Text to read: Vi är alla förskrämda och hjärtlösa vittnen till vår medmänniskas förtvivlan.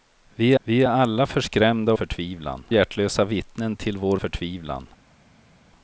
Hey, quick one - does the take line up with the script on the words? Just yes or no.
no